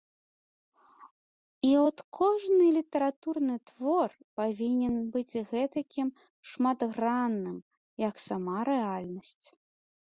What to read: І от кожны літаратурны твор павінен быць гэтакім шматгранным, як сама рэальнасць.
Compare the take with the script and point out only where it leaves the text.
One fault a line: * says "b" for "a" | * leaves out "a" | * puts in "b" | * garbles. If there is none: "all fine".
all fine